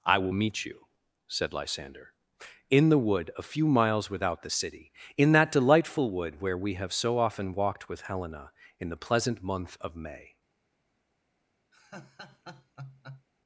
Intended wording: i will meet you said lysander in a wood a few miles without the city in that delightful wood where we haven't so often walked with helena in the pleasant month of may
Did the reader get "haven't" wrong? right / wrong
wrong